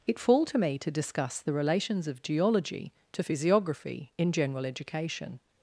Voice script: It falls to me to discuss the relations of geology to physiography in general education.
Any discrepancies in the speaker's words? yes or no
yes